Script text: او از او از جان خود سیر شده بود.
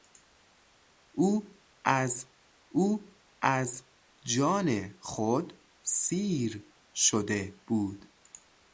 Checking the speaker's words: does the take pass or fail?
pass